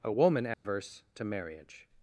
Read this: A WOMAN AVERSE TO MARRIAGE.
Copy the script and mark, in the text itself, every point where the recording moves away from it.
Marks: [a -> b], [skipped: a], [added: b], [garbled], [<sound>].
A WOMAN AVERSE [dropout] TO MARRIAGE.